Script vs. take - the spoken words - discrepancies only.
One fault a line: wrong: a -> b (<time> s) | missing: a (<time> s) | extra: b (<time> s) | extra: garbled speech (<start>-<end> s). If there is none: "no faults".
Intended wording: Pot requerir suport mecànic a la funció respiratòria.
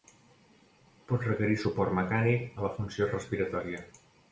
no faults